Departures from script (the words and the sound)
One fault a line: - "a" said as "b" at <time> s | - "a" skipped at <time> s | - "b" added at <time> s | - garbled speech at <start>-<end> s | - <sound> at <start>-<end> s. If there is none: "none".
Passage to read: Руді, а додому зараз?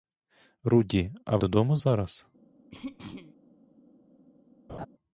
- throat clearing at 2.7-3.4 s
- laugh at 4.7-4.9 s